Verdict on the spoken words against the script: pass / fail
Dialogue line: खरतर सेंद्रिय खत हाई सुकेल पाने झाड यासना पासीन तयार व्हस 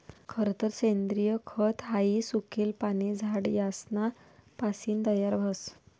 pass